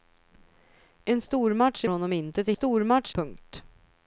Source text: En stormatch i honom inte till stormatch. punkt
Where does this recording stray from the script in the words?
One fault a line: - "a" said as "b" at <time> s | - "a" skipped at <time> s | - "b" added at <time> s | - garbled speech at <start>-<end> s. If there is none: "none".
none